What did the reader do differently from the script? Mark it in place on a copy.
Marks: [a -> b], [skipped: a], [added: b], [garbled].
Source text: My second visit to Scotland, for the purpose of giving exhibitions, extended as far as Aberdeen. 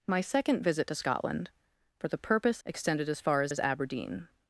My second visit to Scotland, for the purpose [skipped: of giving exhibitions,] extended as far as [added: as] Aberdeen.